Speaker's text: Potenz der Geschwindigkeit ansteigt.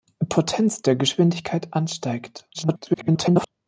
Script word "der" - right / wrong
right